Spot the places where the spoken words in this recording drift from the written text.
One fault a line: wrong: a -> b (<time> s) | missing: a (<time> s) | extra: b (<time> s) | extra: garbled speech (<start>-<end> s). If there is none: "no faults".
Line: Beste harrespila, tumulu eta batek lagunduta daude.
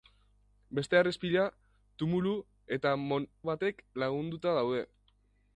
no faults